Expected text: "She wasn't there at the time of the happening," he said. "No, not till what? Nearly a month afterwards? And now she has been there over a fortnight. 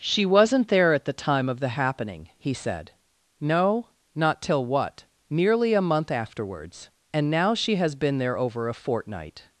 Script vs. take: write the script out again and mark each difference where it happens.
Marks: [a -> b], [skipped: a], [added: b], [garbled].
"She wasn't there at the time of the happening," he said. "No, not till what? Nearly a month afterwards? And now she has been there over a fortnight.